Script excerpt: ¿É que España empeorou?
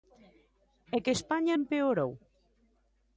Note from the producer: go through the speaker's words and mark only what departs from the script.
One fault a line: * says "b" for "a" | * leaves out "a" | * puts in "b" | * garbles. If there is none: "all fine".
all fine